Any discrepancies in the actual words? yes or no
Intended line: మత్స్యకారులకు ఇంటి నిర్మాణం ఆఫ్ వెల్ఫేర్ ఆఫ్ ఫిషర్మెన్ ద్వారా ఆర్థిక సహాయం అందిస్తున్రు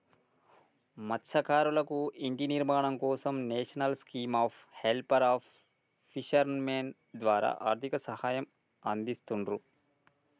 yes